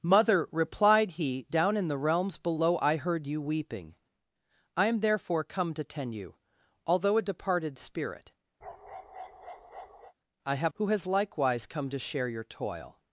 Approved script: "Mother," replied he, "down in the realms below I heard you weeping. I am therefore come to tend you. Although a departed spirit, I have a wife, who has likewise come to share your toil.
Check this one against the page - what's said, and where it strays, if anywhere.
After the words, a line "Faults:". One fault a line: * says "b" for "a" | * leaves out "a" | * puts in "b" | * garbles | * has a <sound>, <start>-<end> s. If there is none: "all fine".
"Mother," replied he, "down in the realms below I heard you weeping. I am therefore come to tend you. Although a departed spirit, I have who has likewise come to share your toil.
Faults:
* has a bark, 8.6-10.1 s
* leaves out "a wife"